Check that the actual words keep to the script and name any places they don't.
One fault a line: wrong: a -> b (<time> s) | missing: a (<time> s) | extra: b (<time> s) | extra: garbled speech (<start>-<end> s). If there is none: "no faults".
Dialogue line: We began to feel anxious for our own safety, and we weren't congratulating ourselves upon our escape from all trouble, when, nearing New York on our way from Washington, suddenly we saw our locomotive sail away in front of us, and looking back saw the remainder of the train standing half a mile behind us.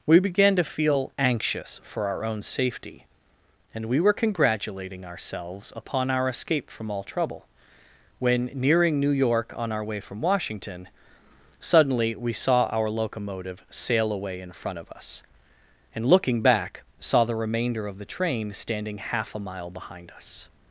wrong: weren't -> were (4.0 s)